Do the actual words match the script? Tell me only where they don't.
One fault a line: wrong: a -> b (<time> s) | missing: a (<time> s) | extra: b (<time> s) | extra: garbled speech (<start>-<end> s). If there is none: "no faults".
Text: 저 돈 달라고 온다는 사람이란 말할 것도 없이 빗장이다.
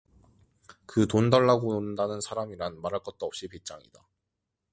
wrong: 저 -> 그 (0.9 s)